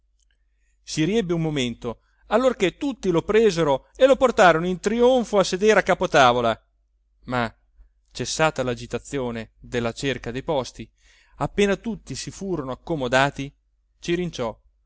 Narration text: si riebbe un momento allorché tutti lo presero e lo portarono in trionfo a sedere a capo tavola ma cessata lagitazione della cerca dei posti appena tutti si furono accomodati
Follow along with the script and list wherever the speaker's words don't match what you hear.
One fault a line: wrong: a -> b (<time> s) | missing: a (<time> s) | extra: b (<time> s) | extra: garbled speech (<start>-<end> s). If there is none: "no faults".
no faults